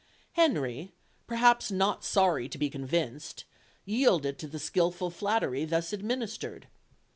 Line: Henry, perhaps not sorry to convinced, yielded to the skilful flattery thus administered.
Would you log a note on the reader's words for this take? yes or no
yes